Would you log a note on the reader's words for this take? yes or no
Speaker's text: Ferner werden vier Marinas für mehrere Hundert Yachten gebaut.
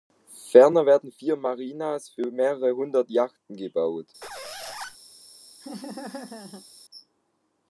no